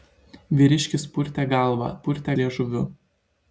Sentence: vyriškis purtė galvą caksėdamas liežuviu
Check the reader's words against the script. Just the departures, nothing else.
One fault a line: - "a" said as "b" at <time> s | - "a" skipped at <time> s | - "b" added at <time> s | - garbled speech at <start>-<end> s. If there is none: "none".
- "caksėdamas" said as "purtė" at 2.1 s